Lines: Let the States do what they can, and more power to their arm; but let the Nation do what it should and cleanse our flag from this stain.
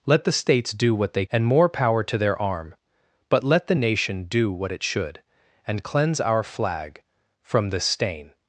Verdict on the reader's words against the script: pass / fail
fail